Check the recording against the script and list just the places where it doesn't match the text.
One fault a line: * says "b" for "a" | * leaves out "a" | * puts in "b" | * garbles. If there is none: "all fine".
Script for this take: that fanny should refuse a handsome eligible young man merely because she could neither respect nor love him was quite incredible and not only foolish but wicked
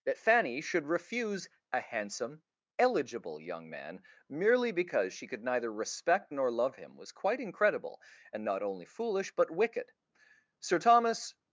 * puts in "sir thomas"